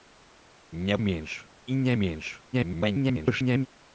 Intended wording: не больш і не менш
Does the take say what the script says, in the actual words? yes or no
no